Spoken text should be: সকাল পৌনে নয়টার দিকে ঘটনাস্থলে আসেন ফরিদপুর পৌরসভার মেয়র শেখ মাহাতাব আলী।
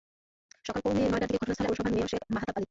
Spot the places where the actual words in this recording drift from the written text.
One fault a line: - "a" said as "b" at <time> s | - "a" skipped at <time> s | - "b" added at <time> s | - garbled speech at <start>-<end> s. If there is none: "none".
- "আসেন ফরিদপুর" skipped at 1.7 s